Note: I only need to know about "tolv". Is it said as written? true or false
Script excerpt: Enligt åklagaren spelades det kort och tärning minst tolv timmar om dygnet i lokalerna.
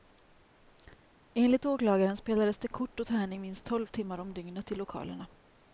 true